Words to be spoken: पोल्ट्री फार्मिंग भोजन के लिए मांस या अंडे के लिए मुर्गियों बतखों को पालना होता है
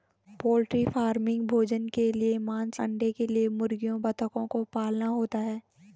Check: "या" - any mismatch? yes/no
yes